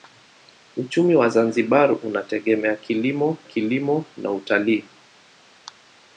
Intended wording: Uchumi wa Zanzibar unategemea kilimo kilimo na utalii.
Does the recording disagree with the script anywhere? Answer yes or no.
no